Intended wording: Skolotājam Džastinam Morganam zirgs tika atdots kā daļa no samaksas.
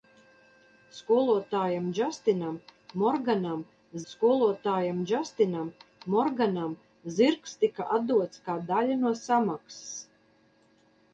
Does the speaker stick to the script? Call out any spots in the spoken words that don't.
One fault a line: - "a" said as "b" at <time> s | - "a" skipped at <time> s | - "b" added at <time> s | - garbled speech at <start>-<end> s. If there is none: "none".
- "skolotājam Džastinam Morganam" added at 4.1 s